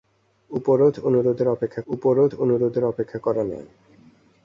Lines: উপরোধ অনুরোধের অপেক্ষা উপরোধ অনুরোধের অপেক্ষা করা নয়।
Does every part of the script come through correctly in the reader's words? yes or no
yes